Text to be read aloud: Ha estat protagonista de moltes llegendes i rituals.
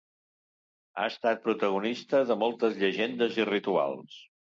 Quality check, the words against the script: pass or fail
pass